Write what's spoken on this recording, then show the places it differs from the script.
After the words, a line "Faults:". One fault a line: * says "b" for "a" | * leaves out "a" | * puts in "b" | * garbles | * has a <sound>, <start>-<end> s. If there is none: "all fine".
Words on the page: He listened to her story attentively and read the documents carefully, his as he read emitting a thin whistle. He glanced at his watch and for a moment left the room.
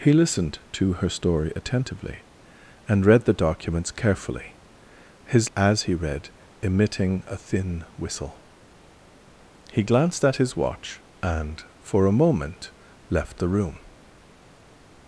He listened to her story attentively and read the documents carefully, his as he read emitting a thin whistle. He glanced at his watch and for a moment left the room.
Faults:
all fine